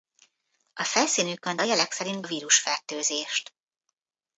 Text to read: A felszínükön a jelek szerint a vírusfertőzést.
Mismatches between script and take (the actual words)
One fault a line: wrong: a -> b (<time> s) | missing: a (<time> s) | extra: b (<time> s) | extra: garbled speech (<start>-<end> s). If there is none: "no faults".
no faults